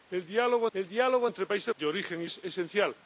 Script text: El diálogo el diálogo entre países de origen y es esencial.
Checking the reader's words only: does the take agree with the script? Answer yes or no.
yes